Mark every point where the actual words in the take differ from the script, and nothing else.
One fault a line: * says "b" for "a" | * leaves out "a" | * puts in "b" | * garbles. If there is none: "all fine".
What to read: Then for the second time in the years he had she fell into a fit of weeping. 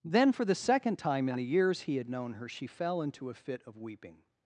* puts in "known her"